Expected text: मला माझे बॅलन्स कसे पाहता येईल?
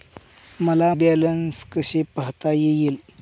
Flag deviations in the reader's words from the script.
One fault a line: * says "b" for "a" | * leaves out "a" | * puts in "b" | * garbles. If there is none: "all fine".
* leaves out "माझे"